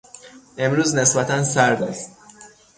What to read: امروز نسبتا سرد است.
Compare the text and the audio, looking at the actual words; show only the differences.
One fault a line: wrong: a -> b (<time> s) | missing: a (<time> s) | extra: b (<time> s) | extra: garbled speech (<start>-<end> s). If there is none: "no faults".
no faults